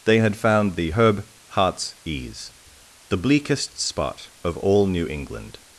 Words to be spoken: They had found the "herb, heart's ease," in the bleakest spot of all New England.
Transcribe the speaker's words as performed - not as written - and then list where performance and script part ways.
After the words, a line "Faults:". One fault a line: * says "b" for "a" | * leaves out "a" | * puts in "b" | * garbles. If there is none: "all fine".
They had found the "herb, heart's ease," the bleakest spot of all New England.
Faults:
* leaves out "in"